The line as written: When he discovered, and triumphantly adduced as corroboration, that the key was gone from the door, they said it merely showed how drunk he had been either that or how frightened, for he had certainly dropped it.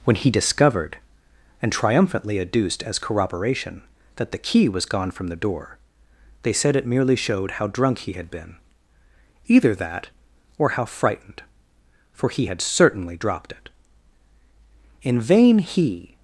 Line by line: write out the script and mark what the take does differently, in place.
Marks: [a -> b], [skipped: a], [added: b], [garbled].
When he discovered, and triumphantly adduced as corroboration, that the key was gone from the door, they said it merely showed how drunk he had been either that or how frightened, for he had certainly dropped it. [added: In vain he]